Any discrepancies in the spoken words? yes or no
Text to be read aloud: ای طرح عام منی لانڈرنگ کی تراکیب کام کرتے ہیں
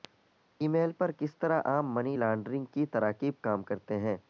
yes